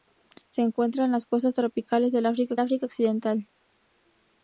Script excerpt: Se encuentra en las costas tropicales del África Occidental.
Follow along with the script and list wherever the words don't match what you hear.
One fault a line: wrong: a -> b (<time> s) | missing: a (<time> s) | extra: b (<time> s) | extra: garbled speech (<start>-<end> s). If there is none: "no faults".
extra: África (2.6 s)